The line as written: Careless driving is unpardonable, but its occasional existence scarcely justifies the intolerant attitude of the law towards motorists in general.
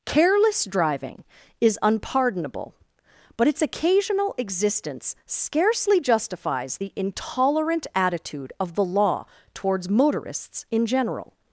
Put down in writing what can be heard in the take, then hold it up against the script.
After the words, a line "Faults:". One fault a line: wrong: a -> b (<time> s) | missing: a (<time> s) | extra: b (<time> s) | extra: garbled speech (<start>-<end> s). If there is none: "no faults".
Careless driving is unpardonable, but its occasional existence scarcely justifies the intolerant attitude of the law towards motorists in general.
Faults:
no faults